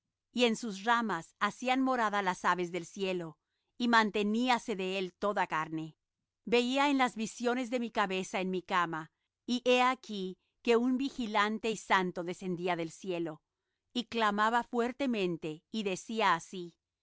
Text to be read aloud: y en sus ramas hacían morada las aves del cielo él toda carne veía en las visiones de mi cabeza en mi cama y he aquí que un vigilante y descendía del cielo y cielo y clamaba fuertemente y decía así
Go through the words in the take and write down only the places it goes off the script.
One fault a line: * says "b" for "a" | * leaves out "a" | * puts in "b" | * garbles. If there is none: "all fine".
* puts in "y manteníase de"
* puts in "santo"
* leaves out "cielo y"